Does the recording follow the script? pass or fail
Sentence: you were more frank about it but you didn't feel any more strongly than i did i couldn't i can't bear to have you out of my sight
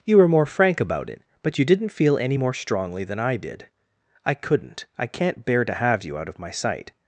pass